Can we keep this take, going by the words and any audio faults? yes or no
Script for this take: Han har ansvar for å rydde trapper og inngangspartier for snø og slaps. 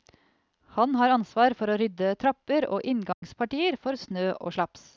no